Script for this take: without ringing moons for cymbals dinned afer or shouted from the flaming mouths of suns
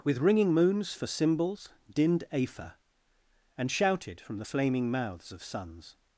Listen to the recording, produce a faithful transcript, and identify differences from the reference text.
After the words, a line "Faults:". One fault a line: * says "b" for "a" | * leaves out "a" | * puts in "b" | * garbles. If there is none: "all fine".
with ringing moons for cymbals dinned afer and shouted from the flaming mouths of suns
Faults:
* says "with" for "without"
* says "and" for "or"